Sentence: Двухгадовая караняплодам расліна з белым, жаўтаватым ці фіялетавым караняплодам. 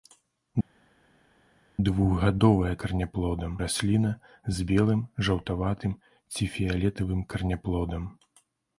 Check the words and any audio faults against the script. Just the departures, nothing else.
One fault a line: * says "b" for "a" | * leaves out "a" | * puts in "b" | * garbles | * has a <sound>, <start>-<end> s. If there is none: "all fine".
all fine